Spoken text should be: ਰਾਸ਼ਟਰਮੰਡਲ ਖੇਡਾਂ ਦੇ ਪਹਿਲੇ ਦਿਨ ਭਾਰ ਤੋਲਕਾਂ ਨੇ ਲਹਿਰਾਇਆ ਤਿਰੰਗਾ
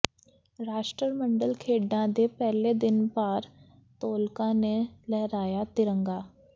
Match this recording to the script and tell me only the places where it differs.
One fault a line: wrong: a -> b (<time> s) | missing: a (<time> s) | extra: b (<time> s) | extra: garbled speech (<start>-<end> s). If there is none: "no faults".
no faults